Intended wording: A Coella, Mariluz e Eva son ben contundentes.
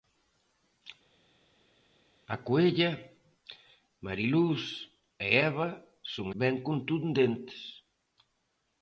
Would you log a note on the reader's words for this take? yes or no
no